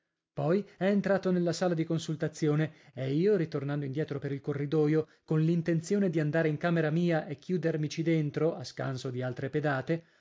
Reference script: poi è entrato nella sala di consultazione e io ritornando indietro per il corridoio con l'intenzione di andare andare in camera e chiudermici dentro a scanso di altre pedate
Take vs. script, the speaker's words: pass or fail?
fail